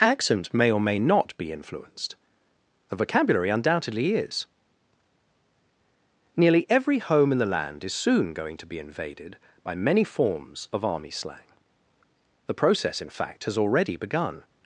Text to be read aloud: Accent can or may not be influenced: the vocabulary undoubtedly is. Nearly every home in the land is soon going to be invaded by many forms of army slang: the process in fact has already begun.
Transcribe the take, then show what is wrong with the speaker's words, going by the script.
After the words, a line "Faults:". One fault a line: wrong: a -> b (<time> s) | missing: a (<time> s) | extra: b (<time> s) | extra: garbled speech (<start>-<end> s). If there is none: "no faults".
Accent may or may not be influenced: the vocabulary undoubtedly is. Nearly every home in the land is soon going to be invaded by many forms of army slang: the process in fact has already begun.
Faults:
wrong: can -> may (0.5 s)